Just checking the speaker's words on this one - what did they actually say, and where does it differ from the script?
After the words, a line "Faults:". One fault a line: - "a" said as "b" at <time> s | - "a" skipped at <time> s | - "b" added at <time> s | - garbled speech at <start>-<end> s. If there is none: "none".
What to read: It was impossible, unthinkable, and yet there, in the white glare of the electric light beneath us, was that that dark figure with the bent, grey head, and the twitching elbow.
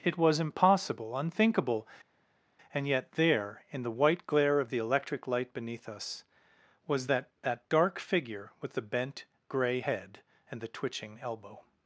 It was impossible, unthinkable, and yet there, in the white glare of the electric light beneath us, was that that dark figure with the bent, grey head, and the twitching elbow.
Faults:
none